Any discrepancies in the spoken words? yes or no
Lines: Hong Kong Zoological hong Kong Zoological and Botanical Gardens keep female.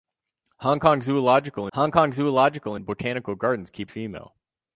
no